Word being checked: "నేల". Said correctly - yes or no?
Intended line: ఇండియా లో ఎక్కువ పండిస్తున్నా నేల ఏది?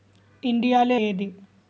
no